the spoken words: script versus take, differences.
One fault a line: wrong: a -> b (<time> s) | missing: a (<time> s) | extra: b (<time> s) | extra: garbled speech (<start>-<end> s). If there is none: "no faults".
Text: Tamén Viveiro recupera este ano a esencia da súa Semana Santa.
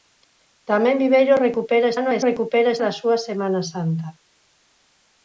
missing: este (1.9 s)
wrong: esencia -> recupera (2.3 s)